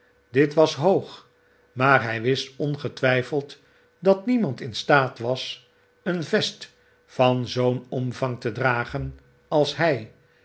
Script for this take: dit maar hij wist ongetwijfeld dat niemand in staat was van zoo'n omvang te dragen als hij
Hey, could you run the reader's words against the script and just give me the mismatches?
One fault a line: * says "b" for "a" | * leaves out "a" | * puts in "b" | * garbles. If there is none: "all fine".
* puts in "was hoog"
* puts in "een vest"